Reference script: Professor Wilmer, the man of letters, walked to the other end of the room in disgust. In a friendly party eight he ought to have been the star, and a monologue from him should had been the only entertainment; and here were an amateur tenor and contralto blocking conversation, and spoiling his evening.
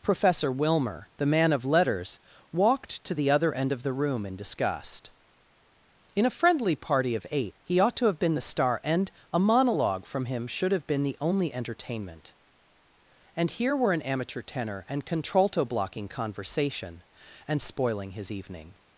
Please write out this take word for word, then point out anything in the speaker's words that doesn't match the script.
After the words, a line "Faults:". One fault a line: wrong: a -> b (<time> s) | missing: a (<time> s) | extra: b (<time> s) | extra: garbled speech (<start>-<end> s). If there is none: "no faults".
Professor Wilmer, the man of letters, walked to the other end of the room in disgust. In a friendly party of eight he ought to have been the star, and a monologue from him should have been the only entertainment; and here were an amateur tenor and contralto blocking conversation, and spoiling his evening.
Faults:
extra: of (7.1 s)
wrong: had -> have (10.7 s)